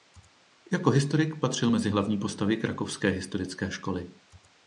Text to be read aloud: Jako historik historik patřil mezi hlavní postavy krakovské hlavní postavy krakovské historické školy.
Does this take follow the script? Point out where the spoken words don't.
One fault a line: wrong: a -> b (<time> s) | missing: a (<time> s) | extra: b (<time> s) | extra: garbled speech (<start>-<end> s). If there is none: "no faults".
missing: historik (1.4 s)
missing: hlavní postavy krakovské (3.1 s)